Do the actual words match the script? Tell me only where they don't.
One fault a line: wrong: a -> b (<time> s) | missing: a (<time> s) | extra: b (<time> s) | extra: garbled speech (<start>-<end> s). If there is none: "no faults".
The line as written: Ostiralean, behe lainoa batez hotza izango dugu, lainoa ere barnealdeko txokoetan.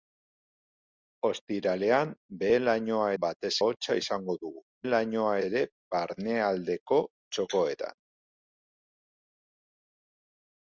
no faults